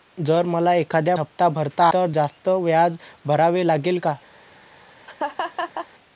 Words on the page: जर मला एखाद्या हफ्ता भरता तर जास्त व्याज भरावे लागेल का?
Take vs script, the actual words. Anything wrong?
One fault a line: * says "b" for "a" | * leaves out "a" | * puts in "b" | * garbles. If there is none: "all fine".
all fine